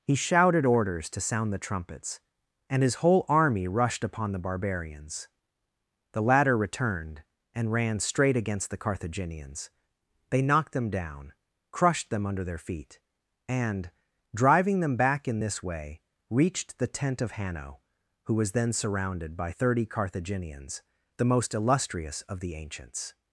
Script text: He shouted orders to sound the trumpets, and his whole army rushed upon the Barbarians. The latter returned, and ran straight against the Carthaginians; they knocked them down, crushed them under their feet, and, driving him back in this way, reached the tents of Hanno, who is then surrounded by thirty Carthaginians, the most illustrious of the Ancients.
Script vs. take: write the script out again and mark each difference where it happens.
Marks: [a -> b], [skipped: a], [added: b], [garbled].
He shouted orders to sound the trumpets, and his whole army rushed upon the Barbarians. The latter returned, and ran straight against the Carthaginians; they knocked them down, crushed them under their feet, and, driving [him -> them] back in this way, reached the [tents -> tent] of Hanno, who [is -> was] then surrounded by thirty Carthaginians, the most illustrious of the Ancients.